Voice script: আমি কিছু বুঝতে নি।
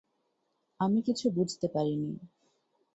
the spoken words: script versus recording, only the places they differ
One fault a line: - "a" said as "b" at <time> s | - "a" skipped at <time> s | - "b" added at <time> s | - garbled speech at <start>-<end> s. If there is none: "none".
- "পারি" added at 1.7 s